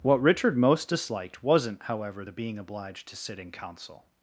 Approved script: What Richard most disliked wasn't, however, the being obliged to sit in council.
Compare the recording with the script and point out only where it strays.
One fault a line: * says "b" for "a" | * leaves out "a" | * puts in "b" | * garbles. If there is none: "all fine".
all fine